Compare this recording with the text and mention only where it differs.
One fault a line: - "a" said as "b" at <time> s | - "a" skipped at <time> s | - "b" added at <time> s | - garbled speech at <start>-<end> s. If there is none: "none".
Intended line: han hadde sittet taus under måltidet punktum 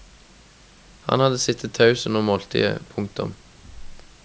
none